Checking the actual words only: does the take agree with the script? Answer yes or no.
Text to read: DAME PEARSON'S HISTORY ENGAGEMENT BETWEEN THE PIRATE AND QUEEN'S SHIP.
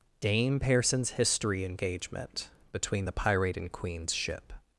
yes